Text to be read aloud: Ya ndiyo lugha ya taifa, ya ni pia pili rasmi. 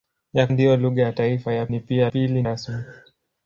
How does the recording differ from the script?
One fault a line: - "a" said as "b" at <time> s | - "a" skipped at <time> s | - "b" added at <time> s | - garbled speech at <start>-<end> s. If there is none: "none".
none